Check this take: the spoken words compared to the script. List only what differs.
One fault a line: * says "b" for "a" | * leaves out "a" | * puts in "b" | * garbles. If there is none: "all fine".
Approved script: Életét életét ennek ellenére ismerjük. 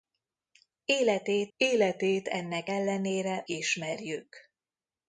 all fine